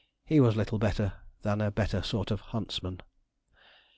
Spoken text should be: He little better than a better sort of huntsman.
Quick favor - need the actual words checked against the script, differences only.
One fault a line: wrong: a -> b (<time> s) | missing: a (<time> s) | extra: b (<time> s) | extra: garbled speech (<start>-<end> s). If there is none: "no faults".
extra: was (0.4 s)